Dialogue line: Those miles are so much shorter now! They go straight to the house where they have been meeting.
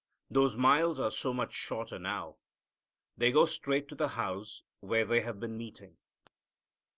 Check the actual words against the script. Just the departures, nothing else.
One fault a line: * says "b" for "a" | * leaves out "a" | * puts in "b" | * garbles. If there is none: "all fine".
all fine